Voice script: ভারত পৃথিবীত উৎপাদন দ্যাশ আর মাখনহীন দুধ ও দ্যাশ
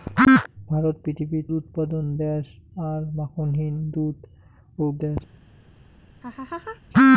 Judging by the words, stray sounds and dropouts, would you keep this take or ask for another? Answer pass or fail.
fail